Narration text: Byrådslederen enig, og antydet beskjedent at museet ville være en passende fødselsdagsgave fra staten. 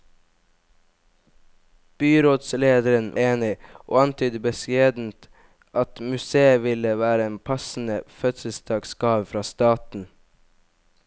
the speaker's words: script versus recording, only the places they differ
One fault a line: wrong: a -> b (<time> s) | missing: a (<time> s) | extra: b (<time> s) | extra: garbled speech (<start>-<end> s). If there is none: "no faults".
no faults